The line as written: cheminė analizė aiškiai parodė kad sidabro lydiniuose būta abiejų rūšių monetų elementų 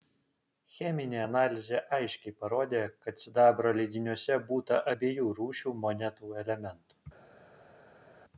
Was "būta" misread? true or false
false